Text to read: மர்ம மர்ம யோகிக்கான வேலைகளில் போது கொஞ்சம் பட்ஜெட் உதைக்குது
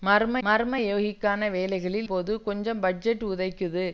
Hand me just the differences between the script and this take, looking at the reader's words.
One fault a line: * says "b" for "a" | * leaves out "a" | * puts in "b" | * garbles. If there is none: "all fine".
all fine